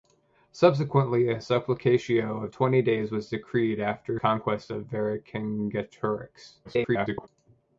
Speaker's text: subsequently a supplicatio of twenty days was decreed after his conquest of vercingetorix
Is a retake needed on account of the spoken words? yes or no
yes